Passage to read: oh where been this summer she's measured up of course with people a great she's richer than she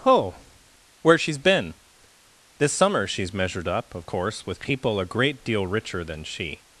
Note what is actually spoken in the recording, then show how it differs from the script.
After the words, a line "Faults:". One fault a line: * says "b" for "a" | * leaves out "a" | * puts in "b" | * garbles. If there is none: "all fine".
oh where she's been this summer she's measured up of course with people a great deal richer than she
Faults:
* puts in "she's"
* says "deal" for "she's"